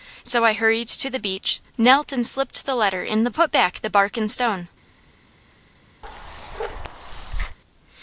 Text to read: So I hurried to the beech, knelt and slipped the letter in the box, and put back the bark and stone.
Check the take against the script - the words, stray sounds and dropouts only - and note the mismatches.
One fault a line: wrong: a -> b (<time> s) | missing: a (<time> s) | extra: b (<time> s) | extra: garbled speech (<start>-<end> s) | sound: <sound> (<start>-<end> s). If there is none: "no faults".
missing: box and (3.3 s)
sound: bark (6.0-7.6 s)